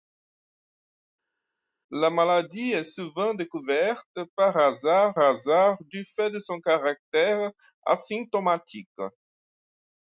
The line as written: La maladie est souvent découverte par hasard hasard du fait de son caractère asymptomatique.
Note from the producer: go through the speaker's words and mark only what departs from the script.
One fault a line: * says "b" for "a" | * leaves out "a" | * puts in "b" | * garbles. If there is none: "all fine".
all fine